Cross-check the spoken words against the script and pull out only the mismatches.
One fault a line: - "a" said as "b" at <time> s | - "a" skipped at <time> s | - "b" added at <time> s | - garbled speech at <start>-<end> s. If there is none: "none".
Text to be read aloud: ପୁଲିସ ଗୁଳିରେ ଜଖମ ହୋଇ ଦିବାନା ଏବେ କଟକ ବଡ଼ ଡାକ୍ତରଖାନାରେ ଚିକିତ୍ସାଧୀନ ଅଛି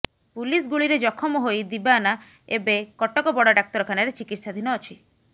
none